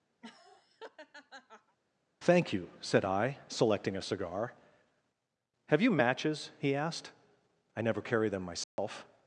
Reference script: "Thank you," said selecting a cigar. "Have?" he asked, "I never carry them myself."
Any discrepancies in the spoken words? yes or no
yes